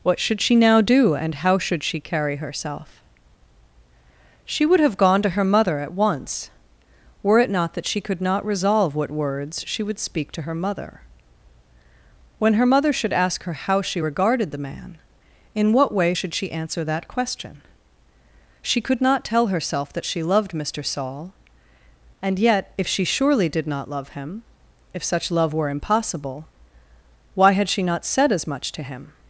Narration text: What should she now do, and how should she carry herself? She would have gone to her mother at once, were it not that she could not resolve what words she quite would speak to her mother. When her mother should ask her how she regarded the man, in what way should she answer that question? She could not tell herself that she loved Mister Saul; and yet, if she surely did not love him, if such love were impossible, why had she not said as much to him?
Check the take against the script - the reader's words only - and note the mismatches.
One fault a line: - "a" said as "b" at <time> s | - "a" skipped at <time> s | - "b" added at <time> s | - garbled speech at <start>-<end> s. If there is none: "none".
- "quite" skipped at 9.8 s